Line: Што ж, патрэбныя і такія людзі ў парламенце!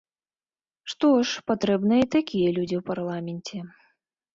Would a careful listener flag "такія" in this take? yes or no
no